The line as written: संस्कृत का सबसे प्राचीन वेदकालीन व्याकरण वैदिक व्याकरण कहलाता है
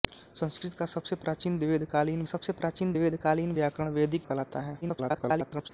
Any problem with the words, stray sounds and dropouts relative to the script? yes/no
yes